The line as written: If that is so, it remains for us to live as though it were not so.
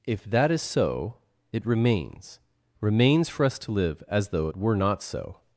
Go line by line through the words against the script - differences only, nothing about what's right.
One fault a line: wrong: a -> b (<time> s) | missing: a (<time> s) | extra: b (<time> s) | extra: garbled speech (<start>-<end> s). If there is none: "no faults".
extra: remains (2.8 s)